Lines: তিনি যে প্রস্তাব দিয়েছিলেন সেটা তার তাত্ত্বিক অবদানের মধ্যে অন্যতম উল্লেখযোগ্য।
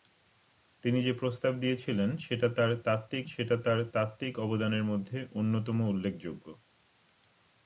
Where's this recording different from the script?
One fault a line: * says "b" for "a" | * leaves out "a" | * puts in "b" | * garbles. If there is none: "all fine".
* puts in "সেটা তার তাত্ত্বিক"